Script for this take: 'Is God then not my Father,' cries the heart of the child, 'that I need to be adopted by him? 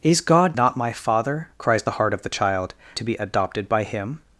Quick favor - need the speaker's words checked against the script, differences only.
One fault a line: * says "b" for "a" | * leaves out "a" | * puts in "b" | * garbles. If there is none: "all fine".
* leaves out "then"
* leaves out "that I need"